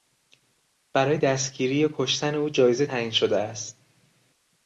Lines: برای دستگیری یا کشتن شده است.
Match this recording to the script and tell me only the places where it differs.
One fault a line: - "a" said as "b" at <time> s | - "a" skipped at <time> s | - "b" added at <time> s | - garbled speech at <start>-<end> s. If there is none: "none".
- "او جایزه تعیین" added at 2.4 s